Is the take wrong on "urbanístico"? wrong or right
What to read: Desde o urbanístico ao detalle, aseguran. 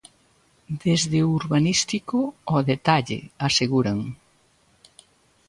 right